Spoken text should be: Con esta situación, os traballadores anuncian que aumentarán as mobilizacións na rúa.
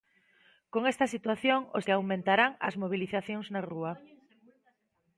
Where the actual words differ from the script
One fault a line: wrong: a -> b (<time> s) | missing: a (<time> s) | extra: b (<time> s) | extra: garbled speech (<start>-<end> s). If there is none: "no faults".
missing: traballadores anuncian (1.9 s)